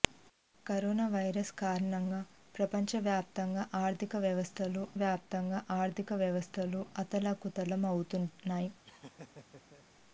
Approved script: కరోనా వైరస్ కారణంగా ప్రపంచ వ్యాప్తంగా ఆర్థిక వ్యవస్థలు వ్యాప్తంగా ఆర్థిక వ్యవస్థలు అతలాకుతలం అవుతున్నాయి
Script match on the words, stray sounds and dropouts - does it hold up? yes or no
no